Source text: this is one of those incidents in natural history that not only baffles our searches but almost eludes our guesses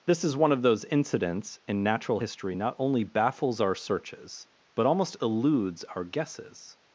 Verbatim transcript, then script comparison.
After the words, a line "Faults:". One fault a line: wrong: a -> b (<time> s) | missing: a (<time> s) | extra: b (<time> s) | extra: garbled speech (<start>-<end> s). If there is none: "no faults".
this is one of those incidents in natural history not only baffles our searches but almost eludes our guesses
Faults:
missing: that (2.5 s)